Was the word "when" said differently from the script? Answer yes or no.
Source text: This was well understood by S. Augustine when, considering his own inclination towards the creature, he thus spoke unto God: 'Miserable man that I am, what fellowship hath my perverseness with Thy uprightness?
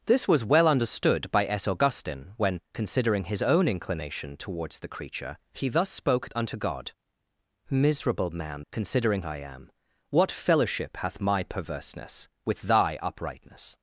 no